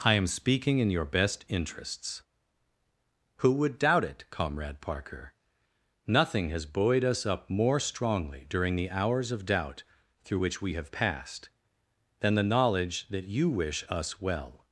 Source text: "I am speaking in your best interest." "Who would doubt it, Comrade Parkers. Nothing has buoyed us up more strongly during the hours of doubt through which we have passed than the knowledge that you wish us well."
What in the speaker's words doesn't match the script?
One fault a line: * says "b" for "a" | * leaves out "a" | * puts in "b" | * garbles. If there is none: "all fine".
* says "interests" for "interest"
* says "Parker" for "Parkers"